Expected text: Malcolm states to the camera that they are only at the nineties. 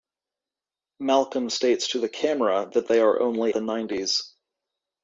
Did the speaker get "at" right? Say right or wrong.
wrong